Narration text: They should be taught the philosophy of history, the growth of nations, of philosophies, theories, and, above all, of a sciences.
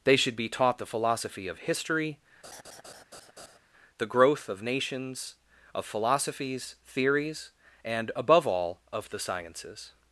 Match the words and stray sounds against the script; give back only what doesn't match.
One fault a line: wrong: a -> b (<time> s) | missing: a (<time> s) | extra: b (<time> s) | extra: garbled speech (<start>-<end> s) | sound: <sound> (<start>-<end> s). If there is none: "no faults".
sound: laugh (2.4-3.6 s)
wrong: a -> the (9.1 s)